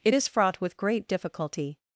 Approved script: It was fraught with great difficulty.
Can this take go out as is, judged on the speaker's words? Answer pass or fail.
fail